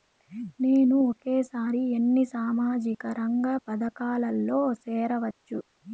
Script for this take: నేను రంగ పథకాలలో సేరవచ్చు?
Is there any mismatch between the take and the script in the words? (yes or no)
yes